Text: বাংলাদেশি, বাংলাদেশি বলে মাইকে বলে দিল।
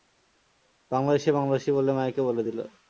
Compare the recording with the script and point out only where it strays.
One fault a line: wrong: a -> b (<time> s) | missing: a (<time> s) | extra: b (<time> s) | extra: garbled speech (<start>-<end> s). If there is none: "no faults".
no faults